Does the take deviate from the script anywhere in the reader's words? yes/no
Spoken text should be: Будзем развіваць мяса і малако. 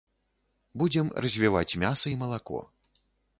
no